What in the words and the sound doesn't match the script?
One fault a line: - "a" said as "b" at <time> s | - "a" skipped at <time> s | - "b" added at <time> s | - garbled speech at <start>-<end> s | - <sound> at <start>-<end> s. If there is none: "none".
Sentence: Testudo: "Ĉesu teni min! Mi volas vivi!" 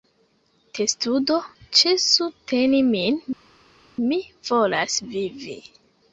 none